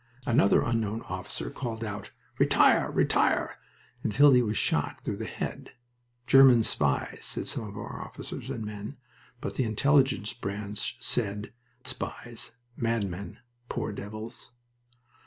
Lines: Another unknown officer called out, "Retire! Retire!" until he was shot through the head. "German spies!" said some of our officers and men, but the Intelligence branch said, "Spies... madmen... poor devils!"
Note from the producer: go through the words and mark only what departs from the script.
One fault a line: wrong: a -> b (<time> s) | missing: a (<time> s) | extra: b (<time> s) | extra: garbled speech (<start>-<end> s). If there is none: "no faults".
no faults